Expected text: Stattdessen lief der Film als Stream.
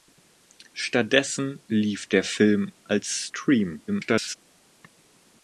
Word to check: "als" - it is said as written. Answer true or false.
true